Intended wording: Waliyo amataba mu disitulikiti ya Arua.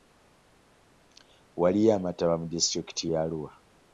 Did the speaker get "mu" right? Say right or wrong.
right